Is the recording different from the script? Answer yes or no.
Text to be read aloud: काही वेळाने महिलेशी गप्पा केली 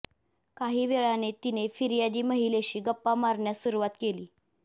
yes